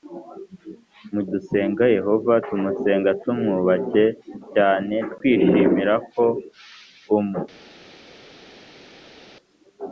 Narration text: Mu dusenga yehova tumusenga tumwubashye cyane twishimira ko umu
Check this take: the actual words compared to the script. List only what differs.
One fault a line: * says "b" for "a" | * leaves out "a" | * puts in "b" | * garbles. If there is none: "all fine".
all fine